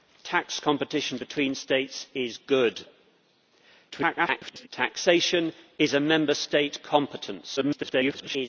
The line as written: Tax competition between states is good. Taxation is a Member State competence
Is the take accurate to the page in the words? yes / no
no